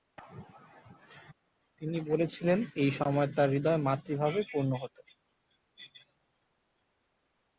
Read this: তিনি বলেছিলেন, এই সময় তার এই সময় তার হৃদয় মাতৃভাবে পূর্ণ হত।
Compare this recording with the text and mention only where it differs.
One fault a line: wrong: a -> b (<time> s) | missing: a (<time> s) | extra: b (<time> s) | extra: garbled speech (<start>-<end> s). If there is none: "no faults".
missing: এই সময় তার (3.5 s)